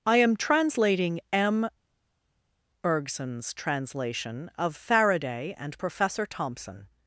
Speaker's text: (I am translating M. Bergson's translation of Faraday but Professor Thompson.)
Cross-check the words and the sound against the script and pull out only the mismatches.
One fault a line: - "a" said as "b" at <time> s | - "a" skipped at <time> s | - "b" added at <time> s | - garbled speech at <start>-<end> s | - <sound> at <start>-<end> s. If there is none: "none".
- "but" said as "and" at 5.6 s